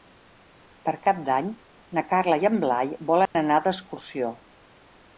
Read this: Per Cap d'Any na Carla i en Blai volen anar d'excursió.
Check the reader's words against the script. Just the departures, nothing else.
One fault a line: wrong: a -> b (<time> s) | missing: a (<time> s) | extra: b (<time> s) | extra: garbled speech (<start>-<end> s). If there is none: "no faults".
no faults